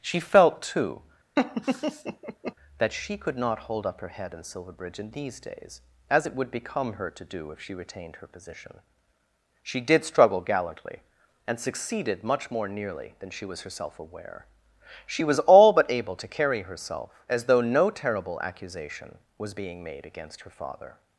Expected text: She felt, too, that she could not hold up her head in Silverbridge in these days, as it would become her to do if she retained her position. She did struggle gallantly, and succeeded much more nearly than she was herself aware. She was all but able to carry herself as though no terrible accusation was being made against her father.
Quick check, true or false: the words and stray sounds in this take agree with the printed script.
false